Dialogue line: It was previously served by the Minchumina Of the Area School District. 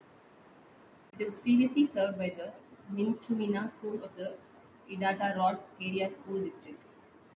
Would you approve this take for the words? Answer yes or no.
no